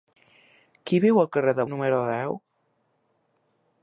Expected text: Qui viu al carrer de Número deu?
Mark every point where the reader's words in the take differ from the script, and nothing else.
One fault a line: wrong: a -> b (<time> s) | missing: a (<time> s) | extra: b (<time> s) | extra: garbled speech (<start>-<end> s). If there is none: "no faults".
no faults